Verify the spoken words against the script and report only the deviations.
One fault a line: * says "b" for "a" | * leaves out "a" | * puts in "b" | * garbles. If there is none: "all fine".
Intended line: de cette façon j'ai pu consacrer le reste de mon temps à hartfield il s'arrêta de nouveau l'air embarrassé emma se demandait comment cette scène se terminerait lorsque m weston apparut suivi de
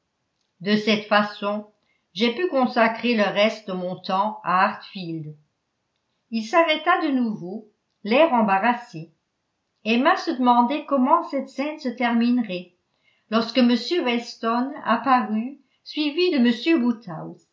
all fine